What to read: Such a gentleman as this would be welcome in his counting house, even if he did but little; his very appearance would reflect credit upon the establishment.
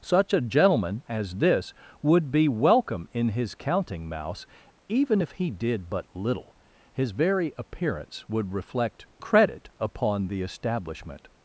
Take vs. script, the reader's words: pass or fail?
fail